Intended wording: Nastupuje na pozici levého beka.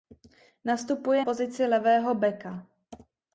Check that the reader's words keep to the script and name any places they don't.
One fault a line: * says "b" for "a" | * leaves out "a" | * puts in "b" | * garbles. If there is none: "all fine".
* leaves out "na"